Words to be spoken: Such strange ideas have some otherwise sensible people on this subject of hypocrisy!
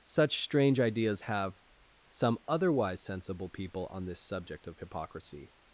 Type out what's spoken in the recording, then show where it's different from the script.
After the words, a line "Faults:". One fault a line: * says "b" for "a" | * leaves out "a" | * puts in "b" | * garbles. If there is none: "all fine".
Such strange ideas have some otherwise sensible people on this subject of hypocrisy!
Faults:
all fine